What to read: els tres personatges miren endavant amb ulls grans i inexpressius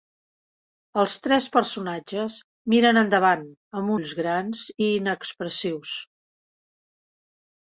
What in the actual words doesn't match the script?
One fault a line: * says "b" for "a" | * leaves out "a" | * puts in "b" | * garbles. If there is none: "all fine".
all fine